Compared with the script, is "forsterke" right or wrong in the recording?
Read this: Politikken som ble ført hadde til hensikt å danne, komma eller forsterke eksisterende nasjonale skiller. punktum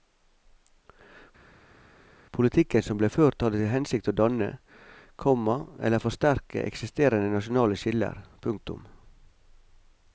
right